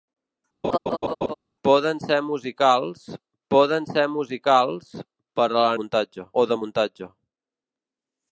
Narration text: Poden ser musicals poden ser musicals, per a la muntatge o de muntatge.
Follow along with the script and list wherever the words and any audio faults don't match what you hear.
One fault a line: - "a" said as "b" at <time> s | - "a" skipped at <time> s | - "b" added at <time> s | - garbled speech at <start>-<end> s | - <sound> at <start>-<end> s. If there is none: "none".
- laugh at 0.6-1.3 s